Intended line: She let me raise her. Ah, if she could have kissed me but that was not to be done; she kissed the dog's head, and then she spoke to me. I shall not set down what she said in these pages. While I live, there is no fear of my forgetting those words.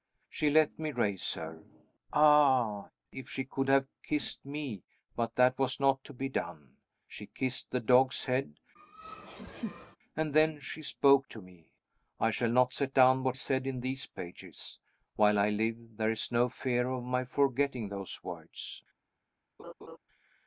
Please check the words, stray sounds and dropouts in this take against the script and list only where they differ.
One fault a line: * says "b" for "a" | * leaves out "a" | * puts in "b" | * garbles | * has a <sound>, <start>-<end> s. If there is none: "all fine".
* has a laugh, 8.8-10.0 s
* leaves out "she"
* has a laugh, 19.6-20.0 s